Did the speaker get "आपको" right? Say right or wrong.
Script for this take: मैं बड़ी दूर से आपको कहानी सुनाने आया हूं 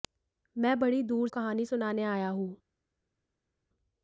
wrong